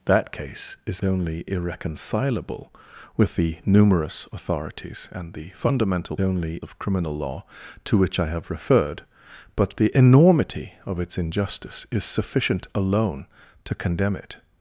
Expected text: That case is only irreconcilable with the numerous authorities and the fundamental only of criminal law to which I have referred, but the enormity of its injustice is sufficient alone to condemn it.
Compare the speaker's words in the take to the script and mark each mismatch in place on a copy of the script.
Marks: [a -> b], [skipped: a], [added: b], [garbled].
That case is only irreconcilable with the numerous authorities and the fundamental only of criminal law to which I have referred, but the enormity of its injustice is sufficient alone to condemn it.